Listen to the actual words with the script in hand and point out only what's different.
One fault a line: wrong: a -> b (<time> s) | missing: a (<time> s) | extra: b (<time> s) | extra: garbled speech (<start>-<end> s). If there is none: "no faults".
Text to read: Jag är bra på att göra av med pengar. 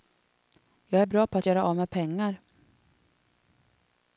no faults